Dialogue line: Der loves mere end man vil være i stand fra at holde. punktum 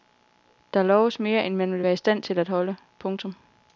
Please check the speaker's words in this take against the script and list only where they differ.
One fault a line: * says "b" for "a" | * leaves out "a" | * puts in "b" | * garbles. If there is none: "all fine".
* says "til" for "fra"